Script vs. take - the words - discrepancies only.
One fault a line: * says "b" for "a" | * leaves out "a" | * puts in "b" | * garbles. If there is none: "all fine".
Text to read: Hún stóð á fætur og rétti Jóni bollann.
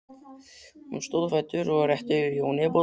all fine